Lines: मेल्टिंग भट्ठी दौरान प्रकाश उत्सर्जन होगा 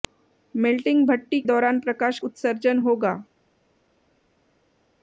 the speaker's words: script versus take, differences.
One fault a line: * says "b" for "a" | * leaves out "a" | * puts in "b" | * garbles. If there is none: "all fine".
all fine